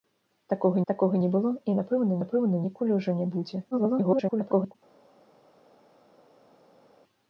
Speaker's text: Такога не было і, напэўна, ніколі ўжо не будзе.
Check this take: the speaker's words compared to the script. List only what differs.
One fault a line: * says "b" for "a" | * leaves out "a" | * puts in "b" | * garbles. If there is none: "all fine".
* puts in "такога"
* puts in "напэўна"
* garbles